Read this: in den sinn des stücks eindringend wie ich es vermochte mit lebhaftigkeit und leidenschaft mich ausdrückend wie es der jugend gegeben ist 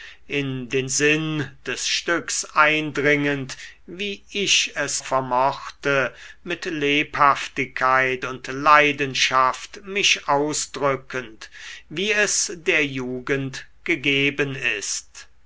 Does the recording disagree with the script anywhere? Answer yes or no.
no